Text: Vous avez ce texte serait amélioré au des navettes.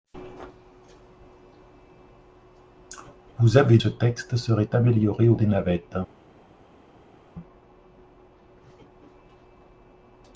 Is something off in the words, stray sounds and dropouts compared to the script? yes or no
no